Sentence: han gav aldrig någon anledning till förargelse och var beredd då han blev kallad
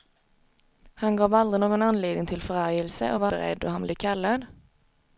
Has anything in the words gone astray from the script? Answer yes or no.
no